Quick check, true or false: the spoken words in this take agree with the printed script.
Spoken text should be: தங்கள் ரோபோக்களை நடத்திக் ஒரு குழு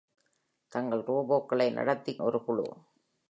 true